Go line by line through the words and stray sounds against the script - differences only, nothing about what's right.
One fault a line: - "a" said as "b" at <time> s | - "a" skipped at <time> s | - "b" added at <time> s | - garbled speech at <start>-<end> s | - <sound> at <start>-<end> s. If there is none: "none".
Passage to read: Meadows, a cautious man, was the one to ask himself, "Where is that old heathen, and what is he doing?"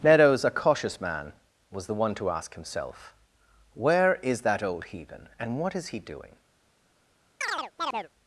- chirp at 7.4-8.1 s